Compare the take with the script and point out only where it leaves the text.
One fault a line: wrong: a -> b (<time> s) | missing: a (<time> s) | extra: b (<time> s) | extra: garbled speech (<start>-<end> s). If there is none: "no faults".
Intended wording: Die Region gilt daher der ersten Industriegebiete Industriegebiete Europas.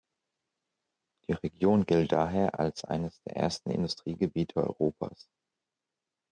extra: als eines (2.6 s)
missing: Industriegebiete (4.6 s)